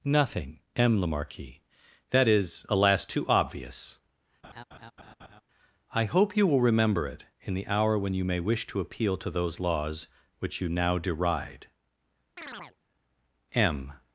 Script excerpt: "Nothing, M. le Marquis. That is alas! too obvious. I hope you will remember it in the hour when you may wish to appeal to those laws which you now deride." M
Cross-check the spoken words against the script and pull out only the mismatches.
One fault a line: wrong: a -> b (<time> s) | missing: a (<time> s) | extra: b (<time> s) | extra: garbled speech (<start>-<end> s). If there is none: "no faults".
no faults